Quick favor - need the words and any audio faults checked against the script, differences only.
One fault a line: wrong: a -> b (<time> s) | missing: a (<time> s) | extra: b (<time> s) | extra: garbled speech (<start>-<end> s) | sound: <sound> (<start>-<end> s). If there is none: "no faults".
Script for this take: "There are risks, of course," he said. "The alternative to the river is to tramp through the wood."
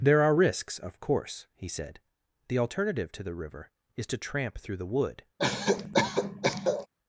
sound: cough (5.4-6.9 s)